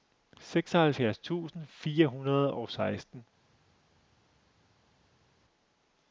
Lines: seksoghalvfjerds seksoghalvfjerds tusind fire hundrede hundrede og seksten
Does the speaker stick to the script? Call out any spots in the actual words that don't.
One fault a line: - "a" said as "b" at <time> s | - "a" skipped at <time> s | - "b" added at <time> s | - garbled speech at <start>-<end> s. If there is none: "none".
- "seksoghalvfjerds" skipped at 1.2 s
- "hundrede" skipped at 2.5 s